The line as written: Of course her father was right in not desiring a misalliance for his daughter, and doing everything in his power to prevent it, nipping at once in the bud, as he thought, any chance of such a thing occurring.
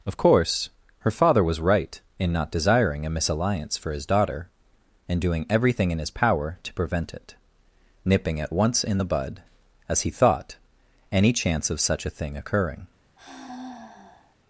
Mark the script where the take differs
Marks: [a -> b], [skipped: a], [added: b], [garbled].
Of course her father was right in not desiring a misalliance for his daughter, and doing everything in his power to prevent it, nipping at once in the bud, as he thought, any chance of such a thing occurring.